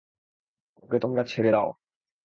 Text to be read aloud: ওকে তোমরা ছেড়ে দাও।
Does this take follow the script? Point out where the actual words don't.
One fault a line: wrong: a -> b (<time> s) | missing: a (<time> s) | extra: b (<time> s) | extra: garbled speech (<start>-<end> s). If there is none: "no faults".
no faults